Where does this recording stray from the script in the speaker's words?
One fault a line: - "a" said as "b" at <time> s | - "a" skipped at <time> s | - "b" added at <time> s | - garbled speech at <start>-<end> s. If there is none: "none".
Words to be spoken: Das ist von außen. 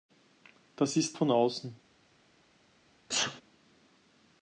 none